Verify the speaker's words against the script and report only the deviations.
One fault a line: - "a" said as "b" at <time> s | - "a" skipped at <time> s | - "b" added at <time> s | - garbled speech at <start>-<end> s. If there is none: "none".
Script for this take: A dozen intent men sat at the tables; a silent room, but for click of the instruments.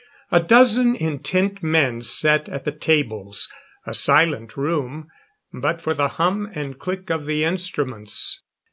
- "the hum and" added at 5.9 s